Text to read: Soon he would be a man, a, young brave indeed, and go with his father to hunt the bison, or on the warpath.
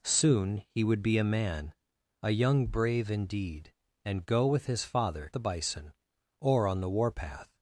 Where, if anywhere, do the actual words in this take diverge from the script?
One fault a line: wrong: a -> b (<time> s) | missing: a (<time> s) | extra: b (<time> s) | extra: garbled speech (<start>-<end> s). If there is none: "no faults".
missing: to hunt (5.3 s)